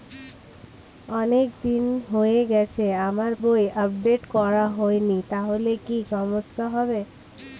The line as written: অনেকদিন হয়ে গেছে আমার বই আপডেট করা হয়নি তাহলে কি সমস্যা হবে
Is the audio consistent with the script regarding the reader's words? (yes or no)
yes